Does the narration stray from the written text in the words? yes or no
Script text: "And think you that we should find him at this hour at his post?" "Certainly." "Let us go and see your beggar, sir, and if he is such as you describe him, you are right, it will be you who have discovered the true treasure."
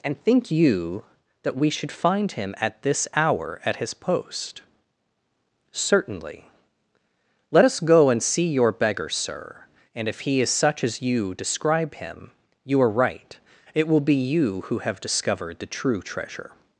no